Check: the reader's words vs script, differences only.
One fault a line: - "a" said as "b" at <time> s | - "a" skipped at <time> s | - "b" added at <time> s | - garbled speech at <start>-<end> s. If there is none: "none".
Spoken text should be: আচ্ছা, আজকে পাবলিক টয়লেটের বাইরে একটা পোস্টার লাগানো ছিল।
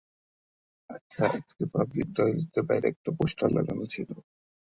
none